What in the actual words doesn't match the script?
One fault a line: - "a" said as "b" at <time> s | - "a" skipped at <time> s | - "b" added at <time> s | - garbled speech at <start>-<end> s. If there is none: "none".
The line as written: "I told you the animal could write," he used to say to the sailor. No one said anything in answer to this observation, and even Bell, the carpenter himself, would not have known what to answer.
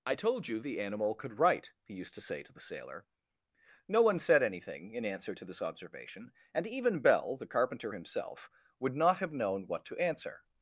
none